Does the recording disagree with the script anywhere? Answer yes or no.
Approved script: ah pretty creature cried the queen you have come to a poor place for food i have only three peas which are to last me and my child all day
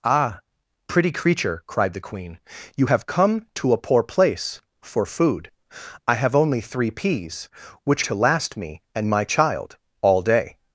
yes